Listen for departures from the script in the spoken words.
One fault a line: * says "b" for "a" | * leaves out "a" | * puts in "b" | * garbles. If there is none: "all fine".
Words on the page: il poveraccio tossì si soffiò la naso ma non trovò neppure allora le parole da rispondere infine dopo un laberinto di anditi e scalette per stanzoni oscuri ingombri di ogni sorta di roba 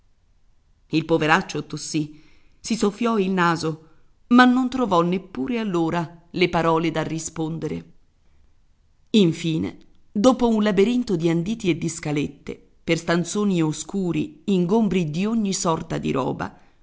* says "il" for "la"
* puts in "di"